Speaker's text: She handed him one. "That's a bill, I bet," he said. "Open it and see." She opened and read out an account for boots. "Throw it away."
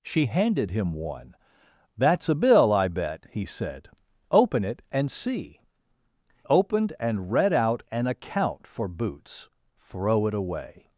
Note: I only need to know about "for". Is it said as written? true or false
true